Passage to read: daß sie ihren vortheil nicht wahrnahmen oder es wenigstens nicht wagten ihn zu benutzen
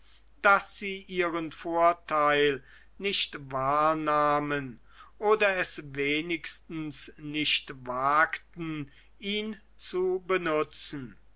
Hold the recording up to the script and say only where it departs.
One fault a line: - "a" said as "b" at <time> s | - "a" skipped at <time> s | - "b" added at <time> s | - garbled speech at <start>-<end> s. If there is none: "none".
none